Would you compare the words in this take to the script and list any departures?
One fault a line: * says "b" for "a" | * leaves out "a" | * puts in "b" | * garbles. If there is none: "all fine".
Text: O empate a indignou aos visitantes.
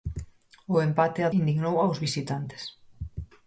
all fine